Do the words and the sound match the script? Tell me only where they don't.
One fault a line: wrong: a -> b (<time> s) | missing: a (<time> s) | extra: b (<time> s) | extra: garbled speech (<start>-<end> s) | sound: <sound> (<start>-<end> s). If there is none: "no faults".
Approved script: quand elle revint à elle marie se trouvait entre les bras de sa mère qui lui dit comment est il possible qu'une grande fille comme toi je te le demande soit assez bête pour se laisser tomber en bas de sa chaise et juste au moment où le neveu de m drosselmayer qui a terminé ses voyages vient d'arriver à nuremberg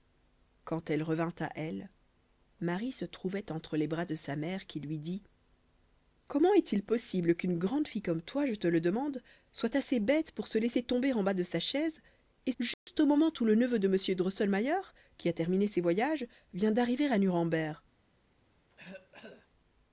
sound: dropout (12.7-12.9 s)
sound: cough (18.7-19.5 s)